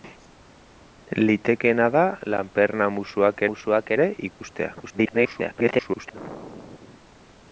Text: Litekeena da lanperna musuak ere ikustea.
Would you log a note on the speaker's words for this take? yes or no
yes